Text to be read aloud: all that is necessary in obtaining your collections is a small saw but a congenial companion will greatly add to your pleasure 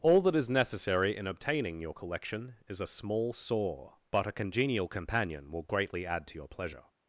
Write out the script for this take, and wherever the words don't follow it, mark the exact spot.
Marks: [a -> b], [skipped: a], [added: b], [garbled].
all that is necessary in obtaining your [collections -> collection] is a small saw but a congenial companion will greatly add to your pleasure